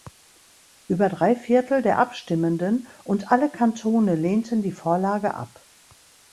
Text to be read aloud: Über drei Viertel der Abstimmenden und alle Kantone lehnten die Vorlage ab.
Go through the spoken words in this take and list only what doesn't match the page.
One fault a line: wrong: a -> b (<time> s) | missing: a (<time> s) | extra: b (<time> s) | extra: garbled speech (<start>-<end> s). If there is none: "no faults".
no faults